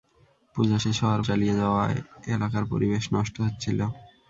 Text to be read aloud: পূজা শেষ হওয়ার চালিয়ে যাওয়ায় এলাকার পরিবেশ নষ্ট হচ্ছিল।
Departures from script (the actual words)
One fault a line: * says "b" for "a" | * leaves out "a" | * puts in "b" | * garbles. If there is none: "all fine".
all fine